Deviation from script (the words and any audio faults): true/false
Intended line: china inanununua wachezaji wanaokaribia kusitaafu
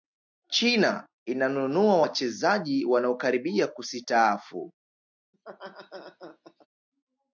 true